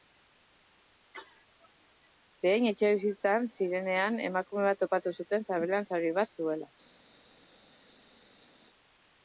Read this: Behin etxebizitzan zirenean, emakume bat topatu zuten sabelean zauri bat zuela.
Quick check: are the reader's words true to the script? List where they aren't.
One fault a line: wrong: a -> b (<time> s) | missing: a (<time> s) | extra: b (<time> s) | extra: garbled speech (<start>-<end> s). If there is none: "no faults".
no faults